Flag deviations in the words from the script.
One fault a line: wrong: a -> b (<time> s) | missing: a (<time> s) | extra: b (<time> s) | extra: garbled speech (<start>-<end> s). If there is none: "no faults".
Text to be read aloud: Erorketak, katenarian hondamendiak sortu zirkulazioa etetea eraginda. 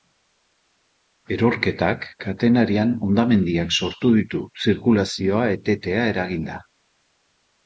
extra: ditu (4.2 s)